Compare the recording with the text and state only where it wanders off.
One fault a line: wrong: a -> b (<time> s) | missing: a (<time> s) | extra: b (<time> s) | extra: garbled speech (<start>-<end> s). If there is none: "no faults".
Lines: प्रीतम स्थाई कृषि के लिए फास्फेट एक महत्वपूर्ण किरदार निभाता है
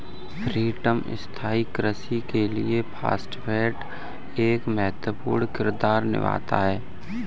no faults